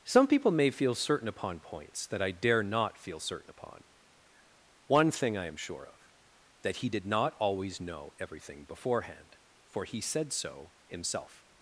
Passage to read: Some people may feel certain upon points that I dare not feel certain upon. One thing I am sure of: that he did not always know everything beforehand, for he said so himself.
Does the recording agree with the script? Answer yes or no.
yes